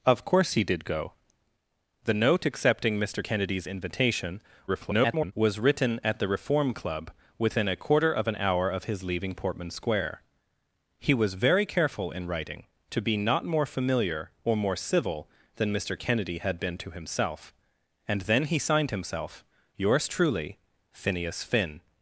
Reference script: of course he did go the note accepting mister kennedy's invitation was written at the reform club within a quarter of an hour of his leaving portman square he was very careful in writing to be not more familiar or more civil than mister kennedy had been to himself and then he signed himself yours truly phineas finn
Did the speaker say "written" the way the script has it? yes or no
yes